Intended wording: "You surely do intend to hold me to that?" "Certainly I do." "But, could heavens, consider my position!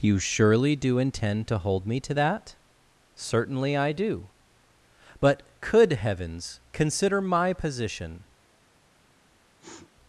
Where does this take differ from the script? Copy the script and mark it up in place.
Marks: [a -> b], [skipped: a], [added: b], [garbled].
"You surely do intend to hold me to that?" "Certainly I do." "But, could heavens, consider my position!